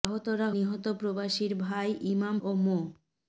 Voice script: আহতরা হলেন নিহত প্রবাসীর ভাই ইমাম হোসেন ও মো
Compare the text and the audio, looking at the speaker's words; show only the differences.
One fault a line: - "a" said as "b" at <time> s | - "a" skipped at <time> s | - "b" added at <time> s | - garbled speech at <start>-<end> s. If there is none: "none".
- "হলেন" skipped at 0.5 s
- "হোসেন" skipped at 2.4 s